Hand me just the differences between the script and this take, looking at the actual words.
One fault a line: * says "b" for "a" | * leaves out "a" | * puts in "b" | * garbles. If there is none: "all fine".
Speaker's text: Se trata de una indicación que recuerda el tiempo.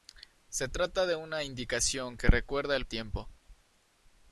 all fine